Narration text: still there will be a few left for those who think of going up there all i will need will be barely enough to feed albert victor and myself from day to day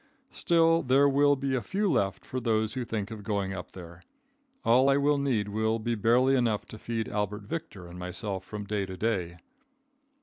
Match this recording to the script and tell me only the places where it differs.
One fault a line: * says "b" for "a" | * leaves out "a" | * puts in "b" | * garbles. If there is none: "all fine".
all fine